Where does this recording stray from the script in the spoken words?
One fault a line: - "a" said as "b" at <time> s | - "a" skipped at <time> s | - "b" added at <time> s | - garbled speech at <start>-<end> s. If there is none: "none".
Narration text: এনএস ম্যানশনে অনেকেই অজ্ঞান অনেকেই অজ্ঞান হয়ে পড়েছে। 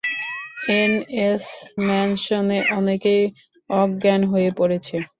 - "অনেকেই অজ্ঞান" skipped at 4.2 s